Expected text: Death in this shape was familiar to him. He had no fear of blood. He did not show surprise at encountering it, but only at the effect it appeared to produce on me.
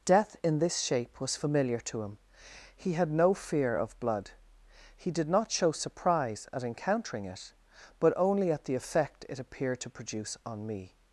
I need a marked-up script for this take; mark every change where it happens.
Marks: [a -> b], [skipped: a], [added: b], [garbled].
Death in this shape was familiar to him. He had no fear of blood. He did not show surprise at encountering it, but only at the effect it appeared to produce on me.